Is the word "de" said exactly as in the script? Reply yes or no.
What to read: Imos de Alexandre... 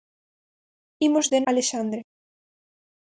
yes